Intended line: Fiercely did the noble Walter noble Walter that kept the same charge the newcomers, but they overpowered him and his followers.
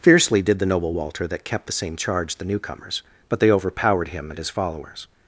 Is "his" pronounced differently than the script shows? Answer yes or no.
no